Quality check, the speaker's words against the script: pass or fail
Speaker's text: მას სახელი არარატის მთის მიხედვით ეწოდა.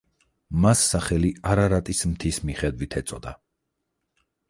pass